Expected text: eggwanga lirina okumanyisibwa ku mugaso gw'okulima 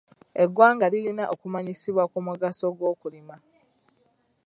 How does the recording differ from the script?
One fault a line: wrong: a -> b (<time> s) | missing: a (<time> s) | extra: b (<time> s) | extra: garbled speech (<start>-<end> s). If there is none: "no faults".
no faults